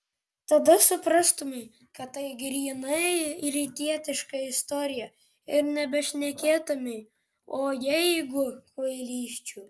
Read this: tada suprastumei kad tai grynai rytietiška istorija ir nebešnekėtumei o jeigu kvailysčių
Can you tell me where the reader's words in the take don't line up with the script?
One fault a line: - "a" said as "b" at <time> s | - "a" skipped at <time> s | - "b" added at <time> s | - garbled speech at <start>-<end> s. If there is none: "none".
none